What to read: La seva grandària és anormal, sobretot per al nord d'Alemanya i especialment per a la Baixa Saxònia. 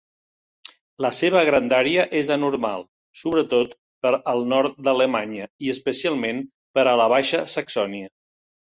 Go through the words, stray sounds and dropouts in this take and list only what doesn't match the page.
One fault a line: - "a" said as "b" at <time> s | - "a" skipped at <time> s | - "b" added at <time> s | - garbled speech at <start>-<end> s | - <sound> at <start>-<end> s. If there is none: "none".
none